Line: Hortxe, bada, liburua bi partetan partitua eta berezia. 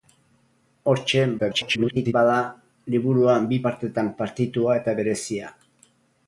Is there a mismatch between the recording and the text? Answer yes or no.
yes